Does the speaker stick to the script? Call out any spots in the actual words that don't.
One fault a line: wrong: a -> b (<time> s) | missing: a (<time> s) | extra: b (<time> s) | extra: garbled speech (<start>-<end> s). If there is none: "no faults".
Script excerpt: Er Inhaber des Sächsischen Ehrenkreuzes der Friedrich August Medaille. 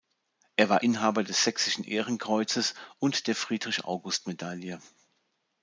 extra: war (0.7 s)
extra: und (3.0 s)